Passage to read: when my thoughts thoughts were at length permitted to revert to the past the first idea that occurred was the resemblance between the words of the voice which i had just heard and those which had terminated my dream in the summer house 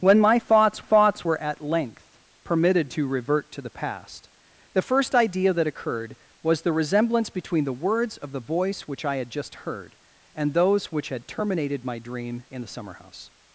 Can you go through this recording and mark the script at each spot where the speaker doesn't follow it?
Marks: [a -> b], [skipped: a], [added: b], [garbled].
when my thoughts thoughts were at length permitted to revert to the past the first idea that occurred was the resemblance between the words of the voice which i had just heard and those which had terminated my dream in the summer house